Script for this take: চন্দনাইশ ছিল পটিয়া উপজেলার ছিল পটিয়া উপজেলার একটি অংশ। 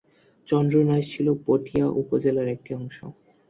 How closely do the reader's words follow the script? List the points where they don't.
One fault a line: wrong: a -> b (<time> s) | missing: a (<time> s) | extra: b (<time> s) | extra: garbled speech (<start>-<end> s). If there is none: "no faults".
missing: ছিল পটিয়া উপজেলার (2.5 s)